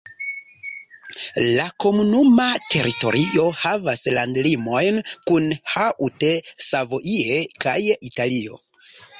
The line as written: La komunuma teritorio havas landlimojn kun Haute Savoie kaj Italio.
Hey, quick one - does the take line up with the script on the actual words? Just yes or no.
yes